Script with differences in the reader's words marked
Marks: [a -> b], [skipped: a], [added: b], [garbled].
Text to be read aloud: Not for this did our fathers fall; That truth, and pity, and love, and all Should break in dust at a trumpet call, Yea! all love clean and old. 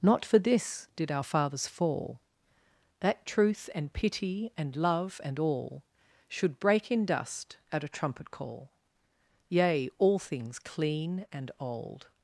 Not for this did our fathers fall; That truth, and pity, and love, and all Should break in dust at a trumpet call, Yea! all [love -> things] clean and old.